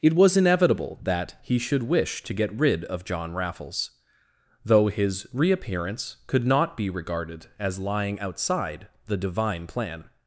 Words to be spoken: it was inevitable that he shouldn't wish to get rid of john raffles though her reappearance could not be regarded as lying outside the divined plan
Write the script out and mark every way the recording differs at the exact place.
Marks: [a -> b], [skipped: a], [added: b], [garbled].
it was inevitable that he [shouldn't -> should] wish to get rid of john raffles though [her -> his] reappearance could not be regarded as lying outside the [divined -> divine] plan